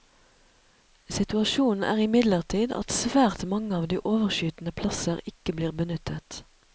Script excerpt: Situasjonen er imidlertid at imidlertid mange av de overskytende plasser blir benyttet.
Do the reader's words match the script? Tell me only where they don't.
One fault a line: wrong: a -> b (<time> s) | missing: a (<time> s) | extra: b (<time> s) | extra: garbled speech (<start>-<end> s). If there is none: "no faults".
wrong: imidlertid -> svært (3.0 s)
extra: ikke (5.3 s)